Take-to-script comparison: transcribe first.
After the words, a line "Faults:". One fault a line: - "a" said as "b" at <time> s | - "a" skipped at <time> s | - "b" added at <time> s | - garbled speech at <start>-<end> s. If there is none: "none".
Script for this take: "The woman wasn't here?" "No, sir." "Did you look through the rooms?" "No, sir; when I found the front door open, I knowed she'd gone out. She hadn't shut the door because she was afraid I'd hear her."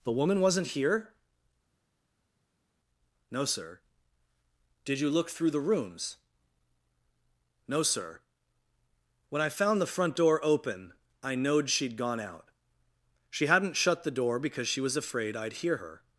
"The woman wasn't here?" "No, sir." "Did you look through the rooms?" "No, sir; when I found the front door open, I knowed she'd gone out. She hadn't shut the door because she was afraid I'd hear her."
Faults:
none